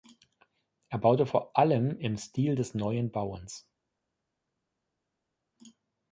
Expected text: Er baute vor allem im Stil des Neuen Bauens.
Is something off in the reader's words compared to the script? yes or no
no